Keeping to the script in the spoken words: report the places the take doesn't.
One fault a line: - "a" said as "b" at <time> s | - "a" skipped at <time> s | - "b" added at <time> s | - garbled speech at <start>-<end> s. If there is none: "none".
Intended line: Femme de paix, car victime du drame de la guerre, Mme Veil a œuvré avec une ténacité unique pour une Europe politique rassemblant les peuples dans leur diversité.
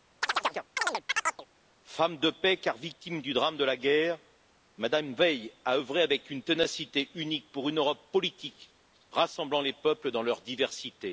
none